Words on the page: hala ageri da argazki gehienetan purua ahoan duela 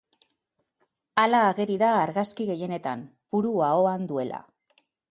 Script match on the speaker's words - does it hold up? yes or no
yes